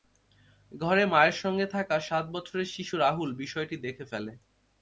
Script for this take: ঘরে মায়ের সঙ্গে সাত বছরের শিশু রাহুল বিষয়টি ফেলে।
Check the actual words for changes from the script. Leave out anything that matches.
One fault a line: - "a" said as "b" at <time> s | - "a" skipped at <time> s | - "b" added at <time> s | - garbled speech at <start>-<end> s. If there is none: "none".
- "থাকা" added at 1.7 s
- "দেখে" added at 3.8 s